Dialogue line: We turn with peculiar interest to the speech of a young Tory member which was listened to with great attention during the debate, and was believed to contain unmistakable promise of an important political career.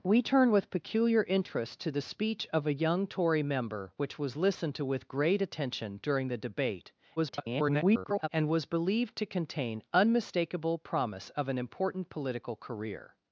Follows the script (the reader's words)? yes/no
no